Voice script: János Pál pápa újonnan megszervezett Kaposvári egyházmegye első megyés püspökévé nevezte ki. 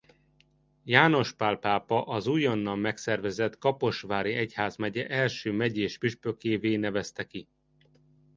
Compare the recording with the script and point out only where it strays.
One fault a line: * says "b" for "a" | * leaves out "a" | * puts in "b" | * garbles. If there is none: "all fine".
* puts in "az"